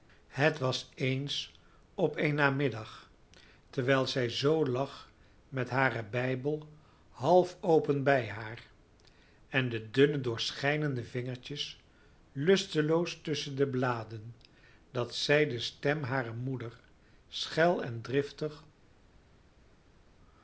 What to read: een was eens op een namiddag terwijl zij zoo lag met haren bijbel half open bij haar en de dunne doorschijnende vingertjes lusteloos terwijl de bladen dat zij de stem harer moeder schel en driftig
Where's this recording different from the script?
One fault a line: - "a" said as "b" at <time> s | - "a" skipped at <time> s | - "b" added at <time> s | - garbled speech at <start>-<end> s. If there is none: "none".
- "een" said as "het" at 0.3 s
- "terwijl" said as "tusschen" at 13.2 s